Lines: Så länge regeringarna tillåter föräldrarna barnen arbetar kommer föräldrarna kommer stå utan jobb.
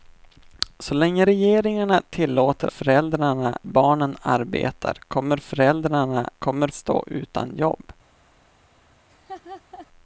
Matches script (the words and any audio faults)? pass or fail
fail